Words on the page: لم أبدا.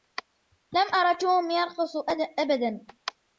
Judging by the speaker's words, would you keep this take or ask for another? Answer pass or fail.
fail